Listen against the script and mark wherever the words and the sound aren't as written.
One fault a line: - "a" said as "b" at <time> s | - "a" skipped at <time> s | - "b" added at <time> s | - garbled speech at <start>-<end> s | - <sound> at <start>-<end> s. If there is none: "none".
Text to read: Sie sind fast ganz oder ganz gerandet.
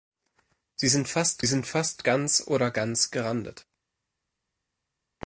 - "sind fast" added at 1.4 s